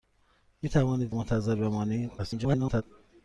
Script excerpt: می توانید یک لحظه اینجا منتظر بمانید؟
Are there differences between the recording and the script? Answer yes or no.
yes